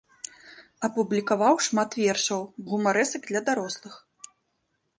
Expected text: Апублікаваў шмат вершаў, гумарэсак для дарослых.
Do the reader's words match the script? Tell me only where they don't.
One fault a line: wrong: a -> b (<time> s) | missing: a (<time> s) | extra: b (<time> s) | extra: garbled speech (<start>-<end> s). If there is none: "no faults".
no faults